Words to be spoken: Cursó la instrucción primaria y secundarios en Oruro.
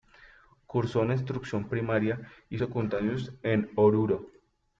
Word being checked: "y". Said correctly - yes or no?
yes